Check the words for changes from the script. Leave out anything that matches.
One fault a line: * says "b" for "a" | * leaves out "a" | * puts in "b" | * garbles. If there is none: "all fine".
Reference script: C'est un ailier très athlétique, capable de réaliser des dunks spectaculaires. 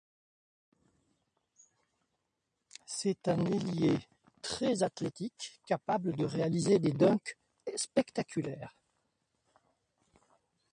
all fine